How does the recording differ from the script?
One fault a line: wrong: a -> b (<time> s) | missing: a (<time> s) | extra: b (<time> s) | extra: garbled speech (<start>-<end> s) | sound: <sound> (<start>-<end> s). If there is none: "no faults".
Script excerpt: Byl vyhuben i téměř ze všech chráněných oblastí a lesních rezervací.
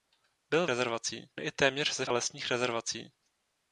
wrong: vyhuben -> rezervací (0.7 s)
missing: všech chráněných oblastí (2.1 s)